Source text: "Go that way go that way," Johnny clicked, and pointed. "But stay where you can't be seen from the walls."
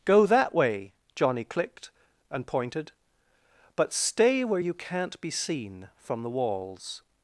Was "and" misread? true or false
false